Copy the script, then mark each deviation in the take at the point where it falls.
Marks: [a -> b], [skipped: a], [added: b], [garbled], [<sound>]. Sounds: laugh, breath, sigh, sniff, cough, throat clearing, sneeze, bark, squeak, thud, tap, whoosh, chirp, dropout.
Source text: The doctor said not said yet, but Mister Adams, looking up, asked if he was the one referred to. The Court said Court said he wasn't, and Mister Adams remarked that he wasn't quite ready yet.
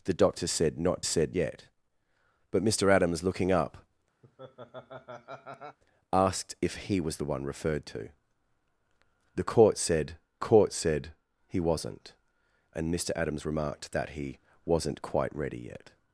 The doctor said not said yet, but Mister Adams, looking up, [laugh] asked if he was the one referred to. The Court said Court said he wasn't, and Mister Adams remarked that he wasn't quite ready yet.